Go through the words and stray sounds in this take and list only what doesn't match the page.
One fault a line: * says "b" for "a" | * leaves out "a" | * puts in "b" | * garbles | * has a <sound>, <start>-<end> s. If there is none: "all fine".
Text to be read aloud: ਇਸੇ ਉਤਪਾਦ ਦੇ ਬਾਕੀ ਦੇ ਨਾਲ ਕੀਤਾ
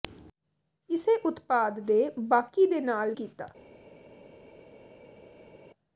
all fine